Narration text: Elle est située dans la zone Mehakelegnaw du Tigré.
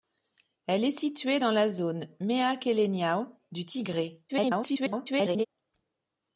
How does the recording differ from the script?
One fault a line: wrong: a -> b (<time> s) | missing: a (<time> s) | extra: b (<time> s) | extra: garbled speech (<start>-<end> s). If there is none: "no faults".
extra: garbled speech (4.3-5.5 s)